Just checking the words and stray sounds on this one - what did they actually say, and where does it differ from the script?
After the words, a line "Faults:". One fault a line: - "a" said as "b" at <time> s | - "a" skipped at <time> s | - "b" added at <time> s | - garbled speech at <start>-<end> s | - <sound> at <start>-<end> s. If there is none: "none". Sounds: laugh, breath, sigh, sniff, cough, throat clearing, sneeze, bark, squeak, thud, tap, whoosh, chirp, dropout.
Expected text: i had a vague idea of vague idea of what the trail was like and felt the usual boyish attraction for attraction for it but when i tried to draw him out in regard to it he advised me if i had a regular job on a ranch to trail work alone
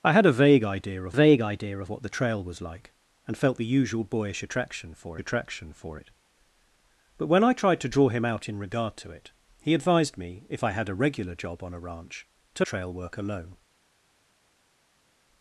i had a vague idea of vague idea of what the trail was like and felt the usual boyish attraction for attraction for it but when i tried to draw him out in regard to it he advised me if i had a regular job on a ranch to trail work alone
Faults:
none